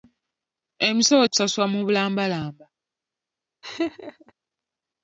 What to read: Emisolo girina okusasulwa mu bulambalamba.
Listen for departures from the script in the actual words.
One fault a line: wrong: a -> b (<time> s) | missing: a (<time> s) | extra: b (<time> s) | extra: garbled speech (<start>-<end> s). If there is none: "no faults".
missing: girina (1.2 s)